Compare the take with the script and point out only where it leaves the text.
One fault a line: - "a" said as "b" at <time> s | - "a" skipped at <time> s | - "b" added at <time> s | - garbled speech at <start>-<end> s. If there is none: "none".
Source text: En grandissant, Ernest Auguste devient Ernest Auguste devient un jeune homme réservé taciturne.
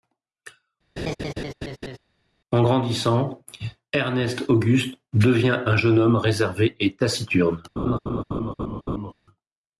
- "Ernest Auguste devient" skipped at 5.6 s
- "et" added at 6.8 s